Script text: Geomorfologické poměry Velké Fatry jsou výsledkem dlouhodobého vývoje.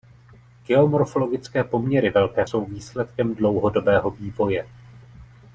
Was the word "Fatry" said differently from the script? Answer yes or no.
yes